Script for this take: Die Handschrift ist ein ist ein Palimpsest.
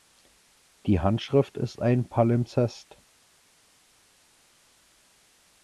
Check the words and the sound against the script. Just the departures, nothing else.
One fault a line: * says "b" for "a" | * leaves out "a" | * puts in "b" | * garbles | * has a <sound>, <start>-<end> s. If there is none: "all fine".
* leaves out "ist ein"